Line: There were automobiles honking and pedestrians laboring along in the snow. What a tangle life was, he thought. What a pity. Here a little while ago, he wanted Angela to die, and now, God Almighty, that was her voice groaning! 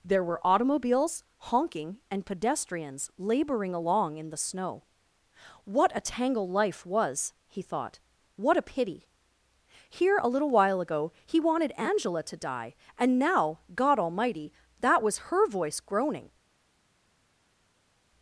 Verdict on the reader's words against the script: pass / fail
pass